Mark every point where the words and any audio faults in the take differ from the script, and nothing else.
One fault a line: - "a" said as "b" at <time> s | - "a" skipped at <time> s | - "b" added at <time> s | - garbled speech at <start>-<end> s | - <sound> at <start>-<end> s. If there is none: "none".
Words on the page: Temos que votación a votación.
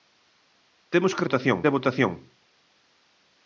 none